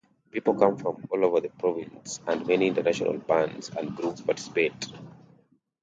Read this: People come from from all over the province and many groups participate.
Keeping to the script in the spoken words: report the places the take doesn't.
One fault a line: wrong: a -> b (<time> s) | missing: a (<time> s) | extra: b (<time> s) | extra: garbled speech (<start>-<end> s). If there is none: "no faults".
missing: from (1.1 s)
extra: international bands and (2.7 s)